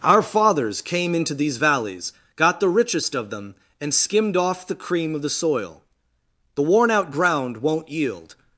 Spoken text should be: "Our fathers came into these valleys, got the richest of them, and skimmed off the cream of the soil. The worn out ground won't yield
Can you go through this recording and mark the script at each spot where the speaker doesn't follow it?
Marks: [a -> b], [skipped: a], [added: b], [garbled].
"Our fathers came into these valleys, got the richest of them, and skimmed off the cream of the soil. The worn out ground won't yield